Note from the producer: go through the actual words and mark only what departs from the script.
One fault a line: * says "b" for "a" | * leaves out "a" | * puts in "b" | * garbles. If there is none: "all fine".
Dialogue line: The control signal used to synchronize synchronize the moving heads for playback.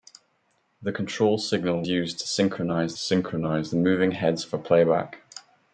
all fine